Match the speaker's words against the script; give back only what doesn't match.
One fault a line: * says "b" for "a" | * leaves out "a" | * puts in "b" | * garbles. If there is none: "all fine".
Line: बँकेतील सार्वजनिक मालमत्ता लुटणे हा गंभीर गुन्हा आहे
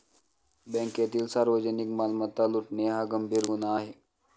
all fine